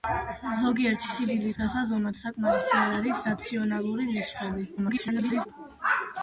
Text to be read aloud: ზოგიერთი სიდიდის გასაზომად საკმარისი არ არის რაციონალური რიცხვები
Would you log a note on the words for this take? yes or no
yes